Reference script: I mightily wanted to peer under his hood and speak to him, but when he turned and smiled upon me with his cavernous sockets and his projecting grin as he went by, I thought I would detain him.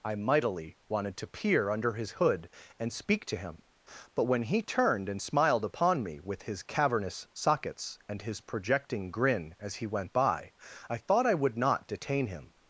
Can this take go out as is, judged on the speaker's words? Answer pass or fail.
fail